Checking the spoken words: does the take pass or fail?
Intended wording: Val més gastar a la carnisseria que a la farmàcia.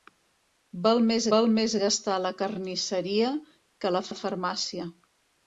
fail